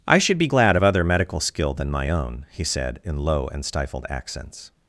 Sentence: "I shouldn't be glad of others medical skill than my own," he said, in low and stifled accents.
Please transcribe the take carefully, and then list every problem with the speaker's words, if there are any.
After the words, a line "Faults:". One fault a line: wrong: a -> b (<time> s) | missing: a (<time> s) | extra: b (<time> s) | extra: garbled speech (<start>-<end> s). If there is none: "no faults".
"I should be glad of other medical skill than my own," he said, in low and stifled accents.
Faults:
wrong: shouldn't -> should (0.2 s)
wrong: others -> other (0.8 s)